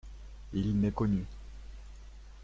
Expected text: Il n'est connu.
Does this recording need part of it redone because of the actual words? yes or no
no